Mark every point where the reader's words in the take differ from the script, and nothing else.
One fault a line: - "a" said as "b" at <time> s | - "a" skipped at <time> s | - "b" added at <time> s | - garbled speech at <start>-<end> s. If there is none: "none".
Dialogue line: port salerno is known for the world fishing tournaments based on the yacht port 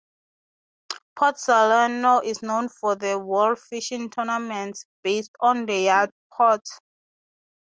none